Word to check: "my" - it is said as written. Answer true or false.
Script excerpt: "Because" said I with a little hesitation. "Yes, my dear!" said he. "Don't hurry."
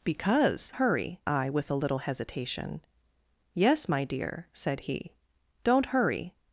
true